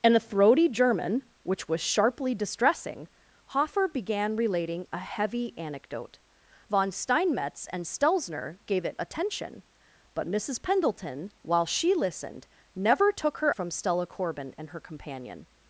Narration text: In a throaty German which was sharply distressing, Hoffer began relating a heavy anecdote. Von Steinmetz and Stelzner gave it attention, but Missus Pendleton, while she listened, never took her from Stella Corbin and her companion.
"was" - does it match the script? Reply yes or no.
yes